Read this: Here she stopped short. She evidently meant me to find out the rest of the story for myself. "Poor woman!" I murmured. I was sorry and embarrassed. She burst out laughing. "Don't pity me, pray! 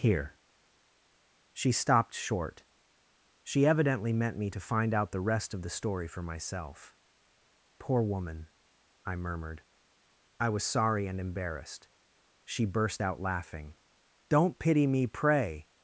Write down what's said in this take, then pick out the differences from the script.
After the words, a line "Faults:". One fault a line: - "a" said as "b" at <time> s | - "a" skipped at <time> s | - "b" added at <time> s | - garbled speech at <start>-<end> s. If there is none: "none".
Here she stopped short. She evidently meant me to find out the rest of the story for myself. "Poor woman!" I murmured. I was sorry and embarrassed. She burst out laughing. "Don't pity me, pray!
Faults:
none